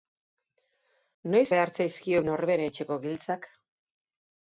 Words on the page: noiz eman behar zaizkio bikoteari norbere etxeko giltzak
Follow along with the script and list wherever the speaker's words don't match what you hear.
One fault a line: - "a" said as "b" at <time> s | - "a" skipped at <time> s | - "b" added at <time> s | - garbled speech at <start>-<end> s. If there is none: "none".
- "eman" skipped at 1.4 s
- "bikoteari" skipped at 2.2 s